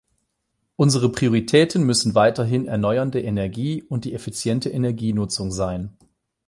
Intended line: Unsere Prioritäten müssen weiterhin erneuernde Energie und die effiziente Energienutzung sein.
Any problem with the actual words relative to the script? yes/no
no